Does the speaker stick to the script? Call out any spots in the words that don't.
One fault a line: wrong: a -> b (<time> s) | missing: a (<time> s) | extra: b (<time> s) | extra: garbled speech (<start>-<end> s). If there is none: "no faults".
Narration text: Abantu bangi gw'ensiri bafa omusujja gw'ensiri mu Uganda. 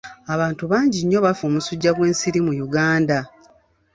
wrong: gw'ensiri -> nnyo (1.0 s)